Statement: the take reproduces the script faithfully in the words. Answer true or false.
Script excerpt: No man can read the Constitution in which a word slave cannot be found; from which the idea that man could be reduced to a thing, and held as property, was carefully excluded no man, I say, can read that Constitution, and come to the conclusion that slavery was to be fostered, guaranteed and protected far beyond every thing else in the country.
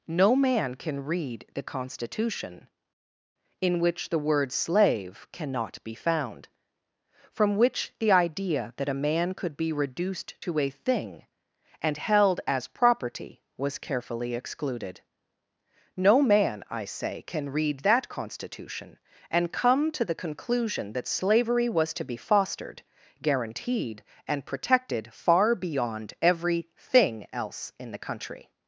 false